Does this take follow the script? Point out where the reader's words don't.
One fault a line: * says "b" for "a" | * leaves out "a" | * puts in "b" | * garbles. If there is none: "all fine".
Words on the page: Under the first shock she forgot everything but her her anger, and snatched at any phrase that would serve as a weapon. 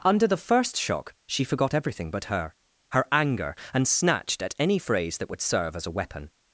all fine